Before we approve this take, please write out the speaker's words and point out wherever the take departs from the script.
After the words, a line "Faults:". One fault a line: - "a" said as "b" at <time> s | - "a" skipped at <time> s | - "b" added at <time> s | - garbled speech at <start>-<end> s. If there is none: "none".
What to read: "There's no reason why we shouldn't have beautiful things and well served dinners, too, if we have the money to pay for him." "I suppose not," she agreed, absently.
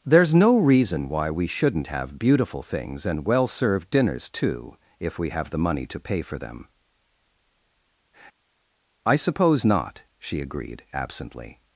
"There's no reason why we shouldn't have beautiful things and well served dinners, too, if we have the money to pay for them." "I suppose not," she agreed, absently.
Faults:
- "him" said as "them" at 6.4 s